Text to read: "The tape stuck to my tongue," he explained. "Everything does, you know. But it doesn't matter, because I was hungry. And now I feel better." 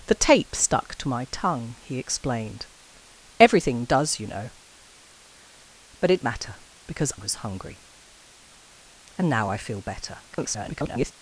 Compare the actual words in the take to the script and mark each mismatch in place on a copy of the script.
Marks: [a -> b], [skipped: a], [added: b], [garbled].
"The tape stuck to my tongue," he explained. "Everything does, you know. But it [skipped: doesn't] matter, because [skipped: I] was hungry. And now I feel better." [garbled]